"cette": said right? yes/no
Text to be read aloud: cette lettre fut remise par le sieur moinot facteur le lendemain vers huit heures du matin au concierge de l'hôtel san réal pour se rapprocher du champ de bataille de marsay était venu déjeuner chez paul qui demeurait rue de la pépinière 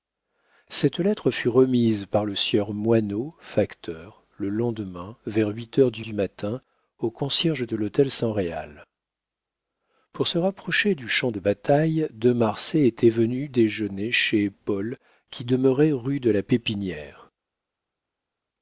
yes